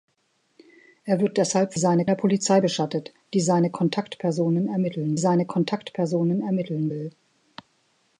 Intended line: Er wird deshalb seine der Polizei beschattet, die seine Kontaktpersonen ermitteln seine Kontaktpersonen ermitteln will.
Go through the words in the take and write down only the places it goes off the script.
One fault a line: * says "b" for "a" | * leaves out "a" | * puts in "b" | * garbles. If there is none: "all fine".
all fine